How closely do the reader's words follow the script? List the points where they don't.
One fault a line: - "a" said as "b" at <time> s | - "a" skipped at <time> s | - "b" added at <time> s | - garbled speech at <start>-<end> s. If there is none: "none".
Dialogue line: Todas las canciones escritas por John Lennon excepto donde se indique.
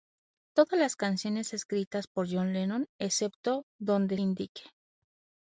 - "se" skipped at 4.2 s